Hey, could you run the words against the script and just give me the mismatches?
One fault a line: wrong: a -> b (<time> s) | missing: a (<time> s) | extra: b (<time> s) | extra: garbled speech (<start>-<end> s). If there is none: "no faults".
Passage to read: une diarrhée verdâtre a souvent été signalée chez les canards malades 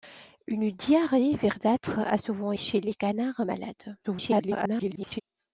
missing: été signalée (2.5 s)
extra: garbled speech (4.0-5.2 s)